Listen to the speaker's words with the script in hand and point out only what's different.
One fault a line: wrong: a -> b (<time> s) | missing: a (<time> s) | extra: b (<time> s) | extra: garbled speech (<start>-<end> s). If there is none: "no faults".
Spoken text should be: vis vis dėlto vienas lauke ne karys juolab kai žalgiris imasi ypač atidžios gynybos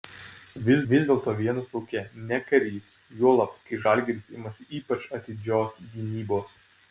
no faults